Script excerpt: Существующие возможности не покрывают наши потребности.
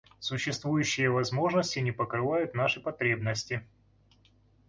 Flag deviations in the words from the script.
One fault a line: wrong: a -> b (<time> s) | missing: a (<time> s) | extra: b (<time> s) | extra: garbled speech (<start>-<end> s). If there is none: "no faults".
no faults